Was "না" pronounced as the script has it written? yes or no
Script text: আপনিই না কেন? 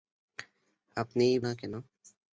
yes